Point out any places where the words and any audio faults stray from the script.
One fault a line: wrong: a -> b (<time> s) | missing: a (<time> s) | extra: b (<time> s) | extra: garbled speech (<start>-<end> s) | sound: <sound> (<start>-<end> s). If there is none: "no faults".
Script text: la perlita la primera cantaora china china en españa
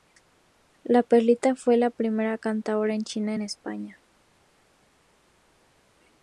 extra: fue (1.6 s)
missing: china (3.4 s)